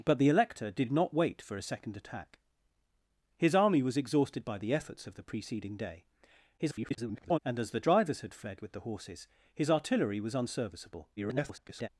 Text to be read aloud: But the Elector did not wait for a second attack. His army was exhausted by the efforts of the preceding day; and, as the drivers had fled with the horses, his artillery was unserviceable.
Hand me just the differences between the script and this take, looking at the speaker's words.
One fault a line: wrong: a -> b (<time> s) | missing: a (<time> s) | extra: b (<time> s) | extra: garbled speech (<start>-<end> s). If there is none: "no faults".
extra: garbled speech (6.6-7.4 s)
extra: garbled speech (11.2-11.9 s)